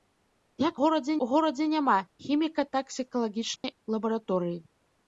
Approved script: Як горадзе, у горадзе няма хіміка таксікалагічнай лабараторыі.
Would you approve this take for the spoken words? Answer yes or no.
yes